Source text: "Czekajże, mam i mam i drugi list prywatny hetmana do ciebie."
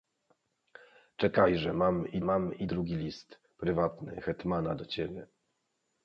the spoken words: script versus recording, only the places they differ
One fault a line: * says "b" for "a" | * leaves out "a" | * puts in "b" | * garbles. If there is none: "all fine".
all fine